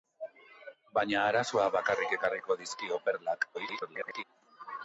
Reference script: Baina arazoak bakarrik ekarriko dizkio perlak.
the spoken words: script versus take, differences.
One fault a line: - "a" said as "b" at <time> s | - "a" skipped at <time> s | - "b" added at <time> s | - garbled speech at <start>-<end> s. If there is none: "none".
- garbled speech at 3.5-4.2 s